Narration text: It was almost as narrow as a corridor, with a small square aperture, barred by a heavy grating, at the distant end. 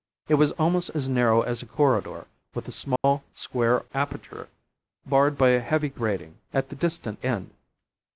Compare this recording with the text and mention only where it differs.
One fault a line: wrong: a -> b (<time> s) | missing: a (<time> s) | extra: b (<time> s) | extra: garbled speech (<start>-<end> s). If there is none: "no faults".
no faults